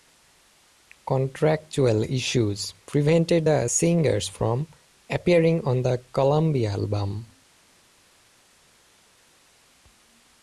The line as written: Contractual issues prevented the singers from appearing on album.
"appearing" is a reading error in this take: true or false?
false